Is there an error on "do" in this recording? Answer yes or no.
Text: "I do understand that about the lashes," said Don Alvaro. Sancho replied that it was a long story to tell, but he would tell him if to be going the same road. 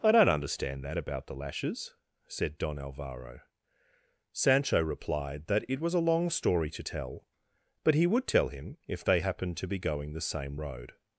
yes